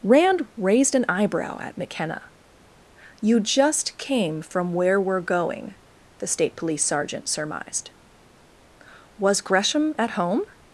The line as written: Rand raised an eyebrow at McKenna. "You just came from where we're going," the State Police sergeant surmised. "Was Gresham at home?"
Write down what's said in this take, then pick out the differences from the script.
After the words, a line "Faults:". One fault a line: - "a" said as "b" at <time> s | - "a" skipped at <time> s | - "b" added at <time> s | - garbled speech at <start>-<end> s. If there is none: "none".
Rand raised an eyebrow at McKenna. "You just came from where we're going," the State Police sergeant surmised. "Was Gresham at home?"
Faults:
none